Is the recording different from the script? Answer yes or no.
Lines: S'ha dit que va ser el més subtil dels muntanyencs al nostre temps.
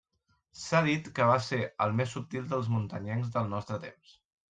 yes